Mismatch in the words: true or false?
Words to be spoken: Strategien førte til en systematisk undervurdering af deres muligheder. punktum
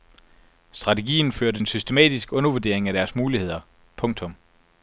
true